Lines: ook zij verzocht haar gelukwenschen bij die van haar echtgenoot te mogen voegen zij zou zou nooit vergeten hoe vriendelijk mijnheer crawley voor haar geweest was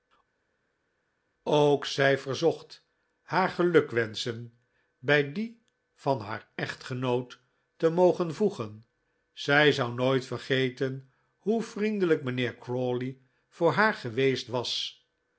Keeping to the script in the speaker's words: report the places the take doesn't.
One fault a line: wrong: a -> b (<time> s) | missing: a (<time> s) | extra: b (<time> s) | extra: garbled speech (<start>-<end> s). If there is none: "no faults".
missing: zou (9.9 s)